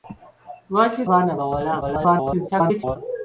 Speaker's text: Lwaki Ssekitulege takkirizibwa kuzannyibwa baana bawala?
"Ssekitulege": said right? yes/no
no